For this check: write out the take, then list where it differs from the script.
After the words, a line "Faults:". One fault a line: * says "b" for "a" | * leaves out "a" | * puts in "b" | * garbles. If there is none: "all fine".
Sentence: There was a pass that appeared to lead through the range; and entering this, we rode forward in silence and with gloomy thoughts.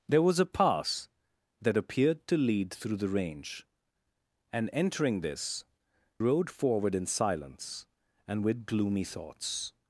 There was a pass that appeared to lead through the range; and entering this, rode forward in silence and with gloomy thoughts.
Faults:
* leaves out "we"